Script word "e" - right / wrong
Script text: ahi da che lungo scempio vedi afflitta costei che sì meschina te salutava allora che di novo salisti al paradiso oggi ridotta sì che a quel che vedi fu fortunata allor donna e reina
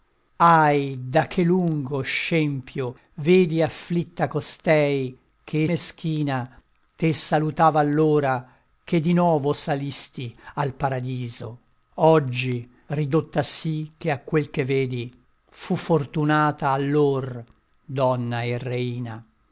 right